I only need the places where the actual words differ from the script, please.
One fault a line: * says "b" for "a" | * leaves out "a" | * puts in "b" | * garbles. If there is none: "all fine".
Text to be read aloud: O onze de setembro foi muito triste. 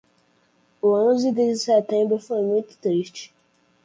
all fine